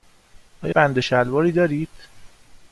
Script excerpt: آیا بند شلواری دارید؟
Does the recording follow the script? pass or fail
pass